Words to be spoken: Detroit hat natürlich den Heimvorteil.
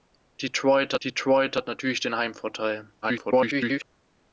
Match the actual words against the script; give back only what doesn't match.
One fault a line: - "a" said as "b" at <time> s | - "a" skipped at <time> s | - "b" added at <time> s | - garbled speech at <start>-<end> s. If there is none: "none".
- "detroit" added at 1.0 s
- garbled speech at 3.0-3.8 s